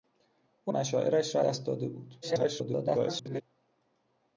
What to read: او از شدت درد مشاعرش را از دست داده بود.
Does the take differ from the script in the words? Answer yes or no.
yes